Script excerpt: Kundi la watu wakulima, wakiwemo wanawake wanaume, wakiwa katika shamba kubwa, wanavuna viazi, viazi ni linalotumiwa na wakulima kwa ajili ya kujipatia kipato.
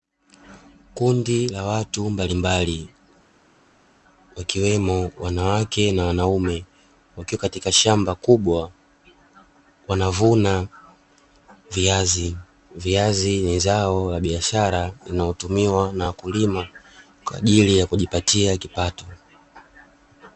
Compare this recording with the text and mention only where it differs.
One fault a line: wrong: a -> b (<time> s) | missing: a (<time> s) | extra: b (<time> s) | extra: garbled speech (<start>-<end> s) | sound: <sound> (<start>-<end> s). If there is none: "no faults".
wrong: wakulima -> mbalimbali (2.1 s)
extra: na (5.9 s)
extra: zao la biashara (13.6 s)